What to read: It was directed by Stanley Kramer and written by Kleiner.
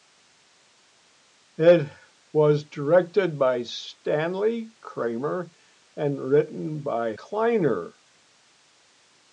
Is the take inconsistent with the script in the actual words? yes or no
no